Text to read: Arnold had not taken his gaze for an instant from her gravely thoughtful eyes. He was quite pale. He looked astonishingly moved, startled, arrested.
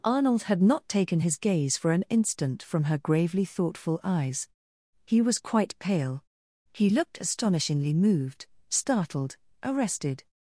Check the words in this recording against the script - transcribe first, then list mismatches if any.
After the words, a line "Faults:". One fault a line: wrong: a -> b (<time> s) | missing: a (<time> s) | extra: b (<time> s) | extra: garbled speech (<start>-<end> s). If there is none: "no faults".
Arnold had not taken his gaze for an instant from her gravely thoughtful eyes. He was quite pale. He looked astonishingly moved, startled, arrested.
Faults:
no faults